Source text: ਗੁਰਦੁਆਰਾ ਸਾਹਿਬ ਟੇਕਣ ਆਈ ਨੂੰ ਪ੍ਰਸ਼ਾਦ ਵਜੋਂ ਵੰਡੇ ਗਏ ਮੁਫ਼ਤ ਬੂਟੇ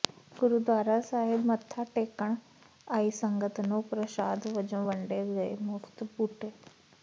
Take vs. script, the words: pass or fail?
fail